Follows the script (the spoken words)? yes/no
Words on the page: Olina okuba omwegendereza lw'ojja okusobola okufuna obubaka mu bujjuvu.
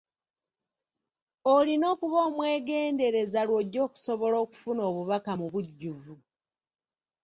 yes